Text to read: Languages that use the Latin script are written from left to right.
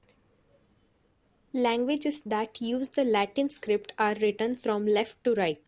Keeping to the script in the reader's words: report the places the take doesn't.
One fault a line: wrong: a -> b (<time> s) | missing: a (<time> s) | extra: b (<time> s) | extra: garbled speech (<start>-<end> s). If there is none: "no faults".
no faults